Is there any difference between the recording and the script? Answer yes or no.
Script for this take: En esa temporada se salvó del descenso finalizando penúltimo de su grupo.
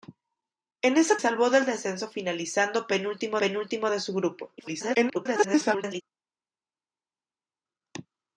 yes